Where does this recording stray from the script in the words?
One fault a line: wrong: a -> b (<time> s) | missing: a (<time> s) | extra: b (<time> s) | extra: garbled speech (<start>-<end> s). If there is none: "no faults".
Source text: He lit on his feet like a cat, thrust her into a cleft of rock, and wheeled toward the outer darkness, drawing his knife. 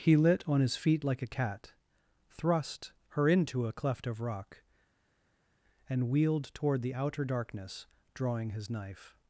no faults